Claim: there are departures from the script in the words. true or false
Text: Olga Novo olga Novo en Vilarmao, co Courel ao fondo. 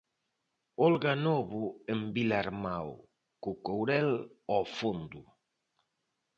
true